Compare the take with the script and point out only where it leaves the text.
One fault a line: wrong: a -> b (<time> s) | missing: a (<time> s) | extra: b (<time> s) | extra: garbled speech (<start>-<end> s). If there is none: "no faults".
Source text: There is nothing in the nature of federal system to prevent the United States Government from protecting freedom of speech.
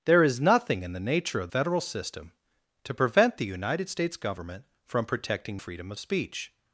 no faults